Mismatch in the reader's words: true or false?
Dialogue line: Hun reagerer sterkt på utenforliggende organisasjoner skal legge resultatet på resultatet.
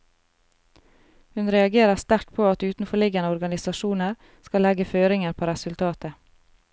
true